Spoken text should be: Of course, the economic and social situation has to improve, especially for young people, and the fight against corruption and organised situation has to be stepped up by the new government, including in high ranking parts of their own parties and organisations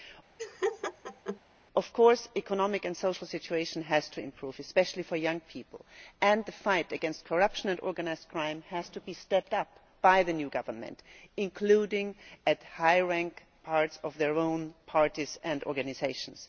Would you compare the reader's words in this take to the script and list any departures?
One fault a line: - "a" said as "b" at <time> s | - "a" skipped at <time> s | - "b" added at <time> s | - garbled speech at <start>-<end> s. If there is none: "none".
- "situation" said as "crime" at 8.3 s